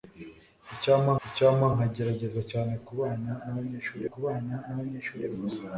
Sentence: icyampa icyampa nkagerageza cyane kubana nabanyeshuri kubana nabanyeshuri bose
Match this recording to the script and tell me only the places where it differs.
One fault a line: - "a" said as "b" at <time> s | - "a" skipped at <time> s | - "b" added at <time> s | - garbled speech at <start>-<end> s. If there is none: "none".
none